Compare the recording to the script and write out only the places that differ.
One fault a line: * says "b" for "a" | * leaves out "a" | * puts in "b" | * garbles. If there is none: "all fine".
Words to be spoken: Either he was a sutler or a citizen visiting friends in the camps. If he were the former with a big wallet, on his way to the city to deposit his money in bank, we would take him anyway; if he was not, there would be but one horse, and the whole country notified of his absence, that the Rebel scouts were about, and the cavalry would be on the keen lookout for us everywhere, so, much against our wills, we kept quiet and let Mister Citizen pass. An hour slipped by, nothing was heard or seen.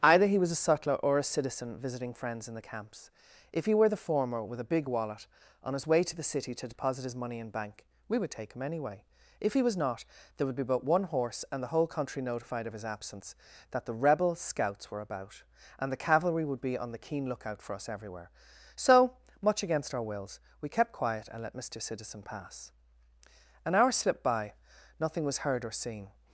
all fine